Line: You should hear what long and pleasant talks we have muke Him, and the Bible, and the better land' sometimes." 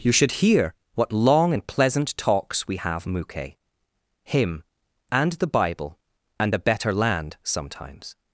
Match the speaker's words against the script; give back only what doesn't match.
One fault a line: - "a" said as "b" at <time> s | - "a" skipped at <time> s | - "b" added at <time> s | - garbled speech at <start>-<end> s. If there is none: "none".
none